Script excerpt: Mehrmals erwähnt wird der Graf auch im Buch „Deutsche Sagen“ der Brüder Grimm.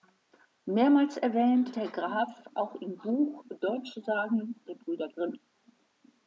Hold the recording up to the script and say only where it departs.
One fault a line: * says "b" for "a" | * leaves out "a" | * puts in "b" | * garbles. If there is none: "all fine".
* leaves out "wird"